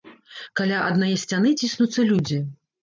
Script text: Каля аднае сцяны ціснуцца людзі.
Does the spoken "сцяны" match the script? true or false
true